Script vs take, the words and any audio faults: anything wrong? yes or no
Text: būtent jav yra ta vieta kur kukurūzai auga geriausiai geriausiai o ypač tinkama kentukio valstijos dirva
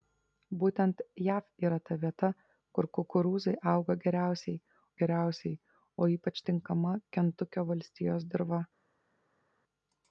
no